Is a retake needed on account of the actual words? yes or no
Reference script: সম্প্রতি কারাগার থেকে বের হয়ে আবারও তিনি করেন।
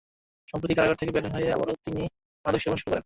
yes